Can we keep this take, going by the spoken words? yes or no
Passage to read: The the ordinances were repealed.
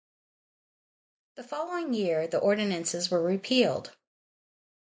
no